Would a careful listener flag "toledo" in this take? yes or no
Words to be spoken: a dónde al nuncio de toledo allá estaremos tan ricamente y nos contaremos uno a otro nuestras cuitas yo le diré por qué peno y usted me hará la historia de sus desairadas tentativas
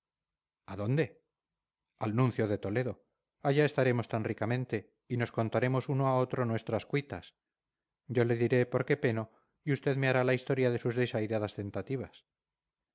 no